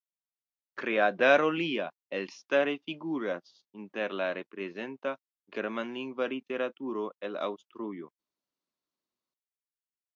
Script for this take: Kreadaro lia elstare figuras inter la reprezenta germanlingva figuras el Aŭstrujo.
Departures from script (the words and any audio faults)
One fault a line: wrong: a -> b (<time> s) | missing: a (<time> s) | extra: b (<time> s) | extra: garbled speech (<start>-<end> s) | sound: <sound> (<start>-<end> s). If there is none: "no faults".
wrong: figuras -> literaturo (6.4 s)